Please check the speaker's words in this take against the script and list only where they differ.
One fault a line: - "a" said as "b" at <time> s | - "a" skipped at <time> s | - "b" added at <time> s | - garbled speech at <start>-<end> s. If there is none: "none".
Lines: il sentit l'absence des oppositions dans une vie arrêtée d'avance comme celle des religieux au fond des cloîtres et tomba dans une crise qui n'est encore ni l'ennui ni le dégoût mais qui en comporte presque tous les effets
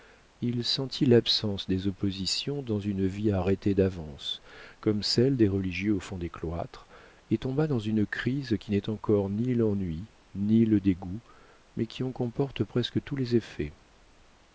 none